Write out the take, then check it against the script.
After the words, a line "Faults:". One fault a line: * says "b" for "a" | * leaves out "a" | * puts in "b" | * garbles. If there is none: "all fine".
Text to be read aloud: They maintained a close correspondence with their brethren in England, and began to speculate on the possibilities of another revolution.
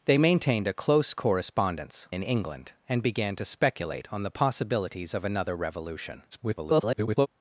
They maintained a close correspondence in England, and began to speculate on the possibilities of another revolution. [garbled]
Faults:
* leaves out "with their brethren"
* garbles